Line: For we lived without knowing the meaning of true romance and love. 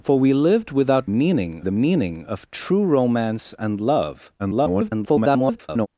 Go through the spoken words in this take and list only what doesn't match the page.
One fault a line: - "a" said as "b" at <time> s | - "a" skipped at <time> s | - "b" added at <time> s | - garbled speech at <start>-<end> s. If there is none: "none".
- "knowing" said as "meaning" at 1.1 s
- garbled speech at 4.4-5.9 s